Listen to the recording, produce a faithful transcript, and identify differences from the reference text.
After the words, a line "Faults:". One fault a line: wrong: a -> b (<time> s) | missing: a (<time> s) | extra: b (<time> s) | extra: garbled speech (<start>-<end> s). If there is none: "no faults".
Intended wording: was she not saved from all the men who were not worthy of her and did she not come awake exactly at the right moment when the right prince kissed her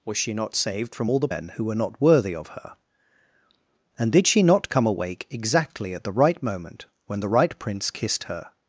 was she not saved from all the men who were not worthy of her and did she not come awake exactly at the right moment when the right prince kissed her
Faults:
no faults